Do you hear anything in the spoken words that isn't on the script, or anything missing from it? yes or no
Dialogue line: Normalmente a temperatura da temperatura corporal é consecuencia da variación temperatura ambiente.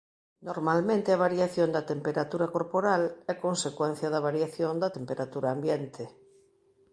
yes